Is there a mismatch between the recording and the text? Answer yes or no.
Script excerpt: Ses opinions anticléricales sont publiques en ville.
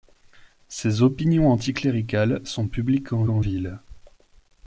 yes